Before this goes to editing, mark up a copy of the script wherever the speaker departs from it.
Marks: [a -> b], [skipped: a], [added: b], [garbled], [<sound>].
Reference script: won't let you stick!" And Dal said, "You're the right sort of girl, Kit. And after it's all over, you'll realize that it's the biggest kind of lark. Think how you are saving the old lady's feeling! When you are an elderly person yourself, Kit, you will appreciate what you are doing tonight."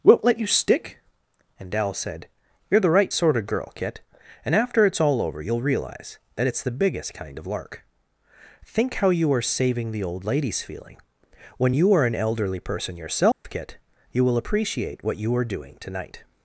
won't let you stick!" And Dal said, "You're the right sort of girl, Kit. And after it's all over, you'll realize that it's the biggest kind of lark. Think how you are saving the old lady's feeling! When you are an elderly person yourself, [dropout] Kit, you will appreciate what you are doing tonight."